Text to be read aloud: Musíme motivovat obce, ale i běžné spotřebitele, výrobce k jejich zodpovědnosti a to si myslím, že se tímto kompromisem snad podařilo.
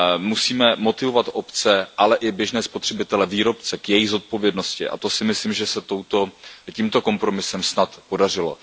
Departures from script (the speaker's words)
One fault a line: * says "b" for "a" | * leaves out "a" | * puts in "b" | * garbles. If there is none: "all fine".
all fine